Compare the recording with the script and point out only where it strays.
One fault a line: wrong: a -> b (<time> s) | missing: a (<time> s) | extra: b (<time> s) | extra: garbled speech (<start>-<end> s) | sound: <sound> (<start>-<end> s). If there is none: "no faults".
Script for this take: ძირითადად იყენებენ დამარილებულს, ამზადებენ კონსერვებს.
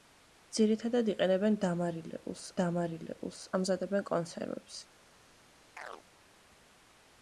extra: დამარილებულს (2.6 s)
sound: chirp (5.8-6.0 s)